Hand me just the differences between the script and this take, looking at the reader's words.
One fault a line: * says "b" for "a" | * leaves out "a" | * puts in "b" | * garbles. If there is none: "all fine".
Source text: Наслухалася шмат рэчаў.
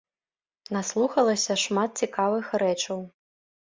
* puts in "цікавых"